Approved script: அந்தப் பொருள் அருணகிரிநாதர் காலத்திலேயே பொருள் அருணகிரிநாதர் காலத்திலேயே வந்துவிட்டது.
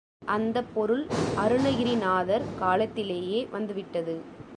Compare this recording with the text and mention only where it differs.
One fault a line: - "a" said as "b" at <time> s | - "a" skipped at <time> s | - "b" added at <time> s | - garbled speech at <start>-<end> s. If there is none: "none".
- "பொருள் அருணகிரிநாதர் காலத்திலேயே" skipped at 3.5 s